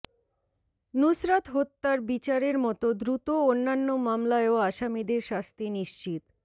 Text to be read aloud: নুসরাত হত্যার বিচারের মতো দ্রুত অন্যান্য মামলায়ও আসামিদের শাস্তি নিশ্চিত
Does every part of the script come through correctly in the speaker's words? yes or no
yes